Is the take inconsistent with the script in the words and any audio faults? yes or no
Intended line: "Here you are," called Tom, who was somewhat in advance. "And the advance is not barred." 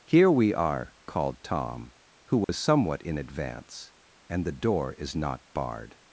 yes